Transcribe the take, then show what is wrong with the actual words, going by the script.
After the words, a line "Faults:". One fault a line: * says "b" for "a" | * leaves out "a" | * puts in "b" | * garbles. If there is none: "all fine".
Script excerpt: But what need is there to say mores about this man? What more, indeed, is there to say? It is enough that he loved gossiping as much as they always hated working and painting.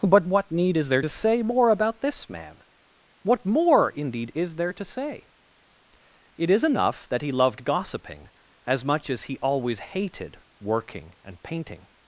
But what need is there to say more about this man? What more, indeed, is there to say? It is enough that he loved gossiping as much as he always hated working and painting.
Faults:
* says "more" for "mores"
* says "he" for "they"